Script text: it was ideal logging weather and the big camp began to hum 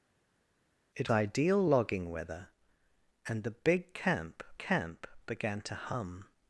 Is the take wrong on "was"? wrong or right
wrong